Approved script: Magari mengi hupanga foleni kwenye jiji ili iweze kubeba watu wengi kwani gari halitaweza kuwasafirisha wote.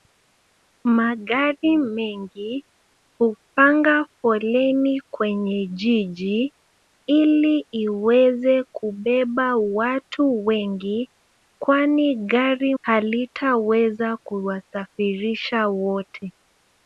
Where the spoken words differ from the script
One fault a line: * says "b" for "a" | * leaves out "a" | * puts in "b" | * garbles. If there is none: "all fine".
all fine